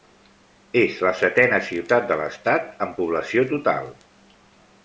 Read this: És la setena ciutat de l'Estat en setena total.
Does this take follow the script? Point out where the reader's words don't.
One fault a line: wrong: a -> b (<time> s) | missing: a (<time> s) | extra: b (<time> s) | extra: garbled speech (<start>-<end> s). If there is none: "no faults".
wrong: setena -> població (3.0 s)